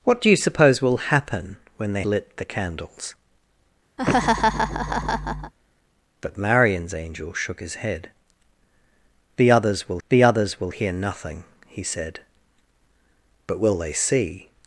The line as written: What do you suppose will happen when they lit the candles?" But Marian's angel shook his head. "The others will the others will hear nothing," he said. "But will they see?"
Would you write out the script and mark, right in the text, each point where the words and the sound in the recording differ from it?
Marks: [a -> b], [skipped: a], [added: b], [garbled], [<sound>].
What do you suppose will happen when they lit the candles?" [laugh] But Marian's angel shook his head. "The others will the others will hear nothing," he said. "But will they see?"